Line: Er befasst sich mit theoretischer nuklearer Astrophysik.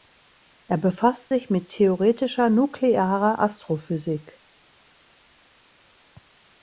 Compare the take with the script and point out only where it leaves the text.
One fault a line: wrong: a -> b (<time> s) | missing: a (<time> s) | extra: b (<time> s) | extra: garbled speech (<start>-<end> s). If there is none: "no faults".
no faults